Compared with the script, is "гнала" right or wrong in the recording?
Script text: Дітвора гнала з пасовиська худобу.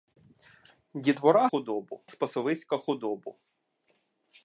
wrong